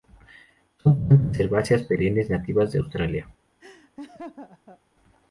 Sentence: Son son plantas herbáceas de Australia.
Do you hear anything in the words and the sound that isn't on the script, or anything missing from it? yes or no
yes